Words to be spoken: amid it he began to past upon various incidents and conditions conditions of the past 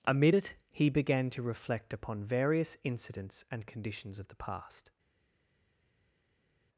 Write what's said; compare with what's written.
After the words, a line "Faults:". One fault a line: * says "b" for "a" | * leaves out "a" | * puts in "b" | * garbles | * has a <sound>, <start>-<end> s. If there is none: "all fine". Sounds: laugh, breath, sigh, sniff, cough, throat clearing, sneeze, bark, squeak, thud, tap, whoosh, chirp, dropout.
amid it he began to reflect upon various incidents and conditions of the past
Faults:
* says "reflect" for "past"
* leaves out "conditions"